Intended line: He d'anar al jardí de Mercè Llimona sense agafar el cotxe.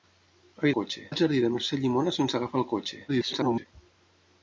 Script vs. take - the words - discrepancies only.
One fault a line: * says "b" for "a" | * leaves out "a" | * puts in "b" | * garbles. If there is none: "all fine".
* says "cotxe" for "d'anar"
* garbles